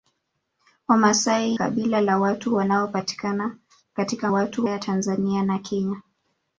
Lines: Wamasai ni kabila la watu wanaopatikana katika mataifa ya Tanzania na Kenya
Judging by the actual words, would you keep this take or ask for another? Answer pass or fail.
fail